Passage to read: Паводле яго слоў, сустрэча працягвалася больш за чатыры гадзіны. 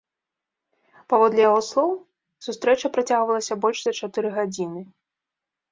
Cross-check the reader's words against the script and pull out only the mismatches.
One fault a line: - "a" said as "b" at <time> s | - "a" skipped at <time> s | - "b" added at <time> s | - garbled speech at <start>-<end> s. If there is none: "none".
none